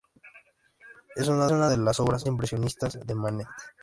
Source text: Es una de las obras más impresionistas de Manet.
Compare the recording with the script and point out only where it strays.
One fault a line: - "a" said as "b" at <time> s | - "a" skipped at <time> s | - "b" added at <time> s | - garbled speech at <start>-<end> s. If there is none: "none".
- "una" added at 1.5 s
- "más" skipped at 2.3 s